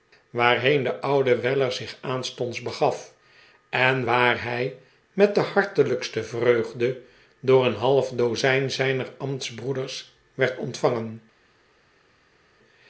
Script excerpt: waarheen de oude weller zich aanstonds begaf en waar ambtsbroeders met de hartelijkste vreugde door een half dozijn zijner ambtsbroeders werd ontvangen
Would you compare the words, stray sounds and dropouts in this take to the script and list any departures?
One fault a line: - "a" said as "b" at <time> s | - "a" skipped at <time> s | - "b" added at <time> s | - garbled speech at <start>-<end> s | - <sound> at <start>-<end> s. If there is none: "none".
- "ambtsbroeders" said as "hij" at 4.4 s